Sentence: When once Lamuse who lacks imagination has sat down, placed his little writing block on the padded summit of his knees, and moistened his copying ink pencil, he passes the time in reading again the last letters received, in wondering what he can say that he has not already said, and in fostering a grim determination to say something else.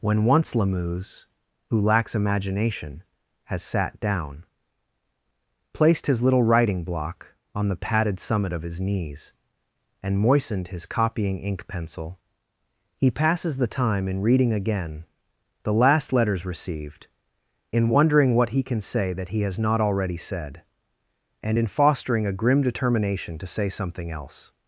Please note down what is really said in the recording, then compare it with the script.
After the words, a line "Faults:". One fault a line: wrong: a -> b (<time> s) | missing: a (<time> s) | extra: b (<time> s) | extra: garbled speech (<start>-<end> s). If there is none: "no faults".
When once Lamuse who lacks imagination has sat down, placed his little writing block on the padded summit of his knees, and moistened his copying ink pencil, he passes the time in reading again the last letters received, in wondering what he can say that he has not already said, and in fostering a grim determination to say something else.
Faults:
no faults